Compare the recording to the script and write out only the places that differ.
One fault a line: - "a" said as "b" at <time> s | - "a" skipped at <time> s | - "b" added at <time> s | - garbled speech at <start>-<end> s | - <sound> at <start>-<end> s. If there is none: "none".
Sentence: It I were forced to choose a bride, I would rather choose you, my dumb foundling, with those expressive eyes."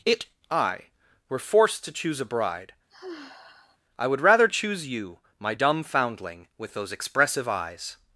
- sigh at 2.9-3.8 s